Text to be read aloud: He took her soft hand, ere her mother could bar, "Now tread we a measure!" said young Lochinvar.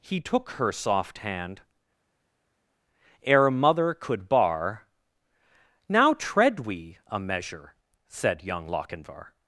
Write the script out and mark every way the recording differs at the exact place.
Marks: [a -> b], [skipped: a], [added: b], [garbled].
He took her soft hand, ere [skipped: her] mother could bar, "Now tread we a measure!" said young Lochinvar.